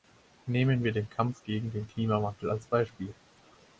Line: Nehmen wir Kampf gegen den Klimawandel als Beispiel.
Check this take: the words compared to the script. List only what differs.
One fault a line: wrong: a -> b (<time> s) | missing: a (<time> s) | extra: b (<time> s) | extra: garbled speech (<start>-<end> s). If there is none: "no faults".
extra: den (0.9 s)